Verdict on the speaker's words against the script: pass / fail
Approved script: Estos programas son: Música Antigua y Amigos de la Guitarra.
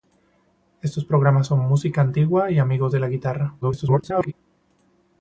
fail